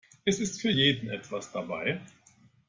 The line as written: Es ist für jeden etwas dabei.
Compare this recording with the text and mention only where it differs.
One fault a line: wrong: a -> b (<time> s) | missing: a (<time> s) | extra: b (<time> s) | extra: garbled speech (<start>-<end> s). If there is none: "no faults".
no faults